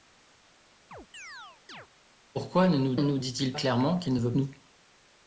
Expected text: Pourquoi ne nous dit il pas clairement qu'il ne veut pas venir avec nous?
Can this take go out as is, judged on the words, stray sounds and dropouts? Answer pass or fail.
fail